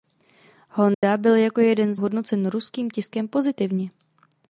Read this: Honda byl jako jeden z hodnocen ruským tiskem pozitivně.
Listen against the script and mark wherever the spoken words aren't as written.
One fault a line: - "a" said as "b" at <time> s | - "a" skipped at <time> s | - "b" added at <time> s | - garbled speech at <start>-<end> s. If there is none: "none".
none